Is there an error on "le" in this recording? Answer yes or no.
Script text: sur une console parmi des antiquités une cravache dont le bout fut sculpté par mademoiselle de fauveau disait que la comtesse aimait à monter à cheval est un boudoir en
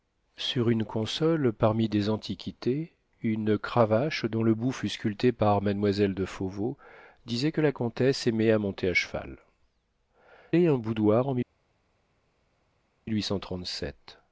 no